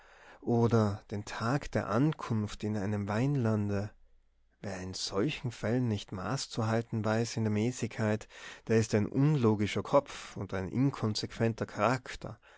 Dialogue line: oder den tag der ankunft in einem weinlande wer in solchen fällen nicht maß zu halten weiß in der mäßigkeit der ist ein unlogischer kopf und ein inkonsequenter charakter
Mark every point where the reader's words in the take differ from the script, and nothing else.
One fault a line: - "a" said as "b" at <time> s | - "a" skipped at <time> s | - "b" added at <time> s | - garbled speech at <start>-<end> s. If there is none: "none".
none